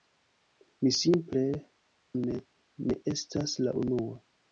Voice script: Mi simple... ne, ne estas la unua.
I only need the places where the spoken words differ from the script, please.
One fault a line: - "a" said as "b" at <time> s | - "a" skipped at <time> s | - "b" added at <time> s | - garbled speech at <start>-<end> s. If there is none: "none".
none